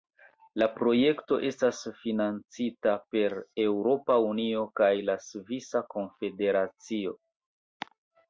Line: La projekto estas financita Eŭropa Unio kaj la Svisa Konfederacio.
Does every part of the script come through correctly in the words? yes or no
no